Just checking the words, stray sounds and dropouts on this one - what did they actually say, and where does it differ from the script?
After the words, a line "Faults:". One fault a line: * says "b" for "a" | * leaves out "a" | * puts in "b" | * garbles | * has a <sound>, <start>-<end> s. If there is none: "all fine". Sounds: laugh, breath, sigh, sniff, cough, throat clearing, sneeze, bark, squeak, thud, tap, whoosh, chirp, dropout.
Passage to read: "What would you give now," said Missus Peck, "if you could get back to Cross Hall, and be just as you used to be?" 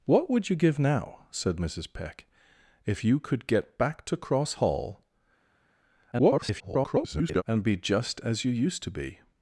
"What would you give now," said Missus Peck, "if you could get back to Cross Hall, [garbled] and be just as you used to be?"
Faults:
* garbles